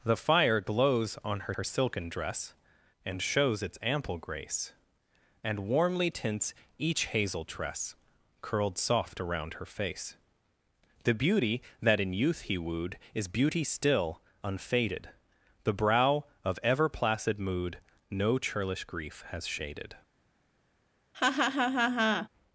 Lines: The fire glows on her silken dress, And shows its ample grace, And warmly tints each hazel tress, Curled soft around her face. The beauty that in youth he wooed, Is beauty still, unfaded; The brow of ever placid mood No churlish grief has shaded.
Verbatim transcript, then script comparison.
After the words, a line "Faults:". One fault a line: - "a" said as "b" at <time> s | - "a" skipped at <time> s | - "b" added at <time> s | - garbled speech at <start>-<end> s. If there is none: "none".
The fire glows on her her silken dress, And shows its ample grace, And warmly tints each hazel tress, Curled soft around her face. The beauty that in youth he wooed, Is beauty still, unfaded; The brow of ever placid mood No churlish grief has shaded.
Faults:
- "her" added at 1.5 s